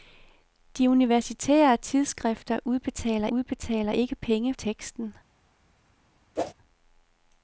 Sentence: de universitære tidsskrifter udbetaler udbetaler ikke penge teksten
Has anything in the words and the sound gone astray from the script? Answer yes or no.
yes